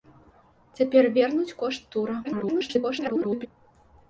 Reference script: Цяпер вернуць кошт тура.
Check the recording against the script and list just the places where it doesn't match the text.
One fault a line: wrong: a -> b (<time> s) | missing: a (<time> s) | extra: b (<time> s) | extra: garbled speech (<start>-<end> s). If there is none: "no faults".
extra: garbled speech (2.2-3.5 s)